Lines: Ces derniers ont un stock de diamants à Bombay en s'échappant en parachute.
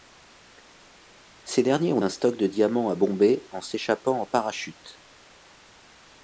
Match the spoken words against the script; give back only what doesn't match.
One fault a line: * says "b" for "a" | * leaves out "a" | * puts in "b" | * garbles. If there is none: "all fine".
all fine